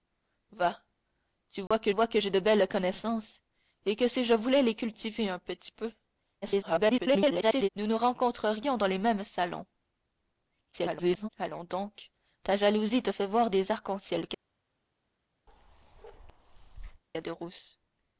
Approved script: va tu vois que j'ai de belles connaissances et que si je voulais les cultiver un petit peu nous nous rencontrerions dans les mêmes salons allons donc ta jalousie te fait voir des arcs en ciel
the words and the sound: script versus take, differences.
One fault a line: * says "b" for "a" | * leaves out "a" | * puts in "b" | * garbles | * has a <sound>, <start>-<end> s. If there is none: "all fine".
* has a dropout, 1.7-1.7 s
* puts in "vois que"
* garbles
* garbles
* has a bark, 15.5-17.0 s